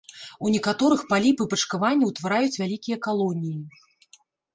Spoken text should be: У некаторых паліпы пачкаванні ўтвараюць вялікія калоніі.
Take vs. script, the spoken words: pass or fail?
pass